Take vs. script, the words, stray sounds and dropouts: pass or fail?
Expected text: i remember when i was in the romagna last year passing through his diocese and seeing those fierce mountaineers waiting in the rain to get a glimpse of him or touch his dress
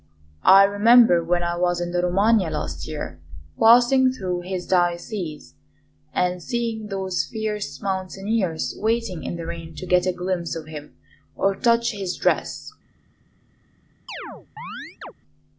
fail